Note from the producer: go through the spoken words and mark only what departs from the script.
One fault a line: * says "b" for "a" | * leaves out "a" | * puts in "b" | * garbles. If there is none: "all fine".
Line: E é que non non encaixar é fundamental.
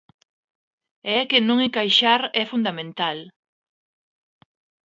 * leaves out "non"